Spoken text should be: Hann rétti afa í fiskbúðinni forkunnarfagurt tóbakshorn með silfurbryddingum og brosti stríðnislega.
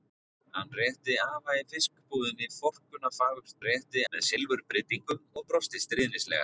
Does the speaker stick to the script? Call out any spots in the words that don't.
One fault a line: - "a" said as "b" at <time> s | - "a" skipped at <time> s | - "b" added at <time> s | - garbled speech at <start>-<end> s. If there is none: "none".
- "tóbakshorn" said as "rétti" at 3.7 s